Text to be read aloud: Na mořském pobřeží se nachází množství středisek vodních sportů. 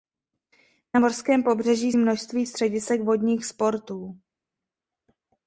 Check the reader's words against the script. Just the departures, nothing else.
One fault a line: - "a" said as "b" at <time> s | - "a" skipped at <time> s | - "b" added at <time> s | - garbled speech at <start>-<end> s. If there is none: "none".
- "se nachází" skipped at 1.9 s